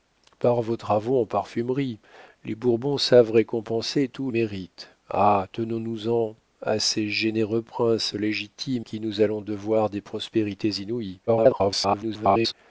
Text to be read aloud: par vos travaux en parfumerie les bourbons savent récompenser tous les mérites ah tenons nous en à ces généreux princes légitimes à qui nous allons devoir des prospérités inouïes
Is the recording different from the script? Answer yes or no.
yes